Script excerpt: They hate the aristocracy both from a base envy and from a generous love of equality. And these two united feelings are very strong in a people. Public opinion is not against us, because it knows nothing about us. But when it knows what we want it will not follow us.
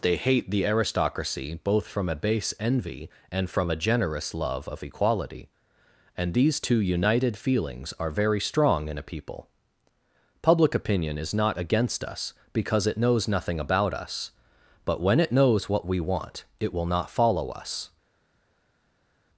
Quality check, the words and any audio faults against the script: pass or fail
pass